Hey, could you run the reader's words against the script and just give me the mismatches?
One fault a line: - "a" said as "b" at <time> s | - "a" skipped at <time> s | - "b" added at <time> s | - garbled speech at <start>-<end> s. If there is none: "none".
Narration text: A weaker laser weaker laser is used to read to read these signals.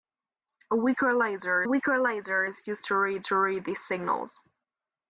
none